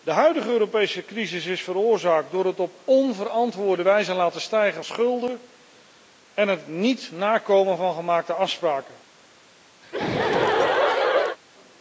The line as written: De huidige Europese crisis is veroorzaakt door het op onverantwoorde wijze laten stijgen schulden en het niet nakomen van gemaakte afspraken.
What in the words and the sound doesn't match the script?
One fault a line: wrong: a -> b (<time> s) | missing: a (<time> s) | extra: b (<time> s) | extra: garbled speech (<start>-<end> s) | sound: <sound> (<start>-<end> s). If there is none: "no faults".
sound: laugh (9.8-11.4 s)